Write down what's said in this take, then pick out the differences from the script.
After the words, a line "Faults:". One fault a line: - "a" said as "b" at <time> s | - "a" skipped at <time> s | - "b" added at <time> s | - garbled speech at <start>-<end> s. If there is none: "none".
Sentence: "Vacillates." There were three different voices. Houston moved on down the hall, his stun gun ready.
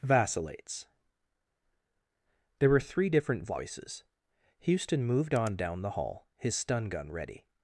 "Vacillates." There were three different voices. Houston moved on down the hall, his stun gun ready.
Faults:
none